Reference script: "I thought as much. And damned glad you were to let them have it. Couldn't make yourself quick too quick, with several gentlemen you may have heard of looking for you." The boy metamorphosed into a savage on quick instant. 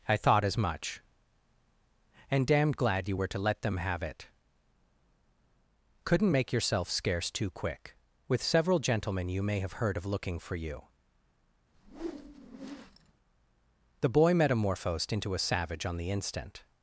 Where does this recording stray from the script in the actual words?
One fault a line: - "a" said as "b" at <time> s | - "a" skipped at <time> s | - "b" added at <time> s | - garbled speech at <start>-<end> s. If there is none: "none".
- "quick" said as "scarce" at 6.9 s
- "quick" said as "the" at 16.0 s